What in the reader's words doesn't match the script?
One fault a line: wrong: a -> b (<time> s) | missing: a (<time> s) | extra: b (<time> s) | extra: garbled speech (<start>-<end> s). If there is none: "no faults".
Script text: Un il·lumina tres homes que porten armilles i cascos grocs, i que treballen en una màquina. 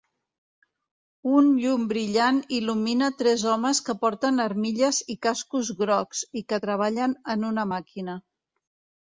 extra: llum brillant (1.6 s)